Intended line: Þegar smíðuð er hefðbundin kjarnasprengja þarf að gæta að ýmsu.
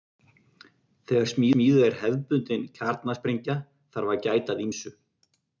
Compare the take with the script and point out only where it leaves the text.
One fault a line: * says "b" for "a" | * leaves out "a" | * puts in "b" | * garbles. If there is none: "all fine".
all fine